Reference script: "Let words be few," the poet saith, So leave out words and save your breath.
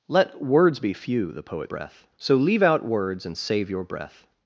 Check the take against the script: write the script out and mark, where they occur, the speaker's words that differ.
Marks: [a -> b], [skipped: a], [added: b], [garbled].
"Let words be few," the poet [saith, -> breath] So leave out words and save your breath.